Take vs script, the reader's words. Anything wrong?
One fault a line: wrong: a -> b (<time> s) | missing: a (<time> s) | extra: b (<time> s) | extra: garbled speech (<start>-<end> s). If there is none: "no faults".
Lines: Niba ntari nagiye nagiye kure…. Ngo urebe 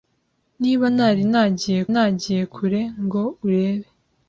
no faults